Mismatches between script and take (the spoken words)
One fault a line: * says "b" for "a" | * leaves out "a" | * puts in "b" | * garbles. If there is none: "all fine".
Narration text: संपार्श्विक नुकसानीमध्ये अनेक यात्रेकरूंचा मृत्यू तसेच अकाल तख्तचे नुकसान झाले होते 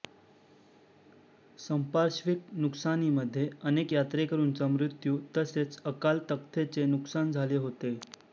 all fine